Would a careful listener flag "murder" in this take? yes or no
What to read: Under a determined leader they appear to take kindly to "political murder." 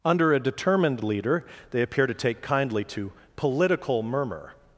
yes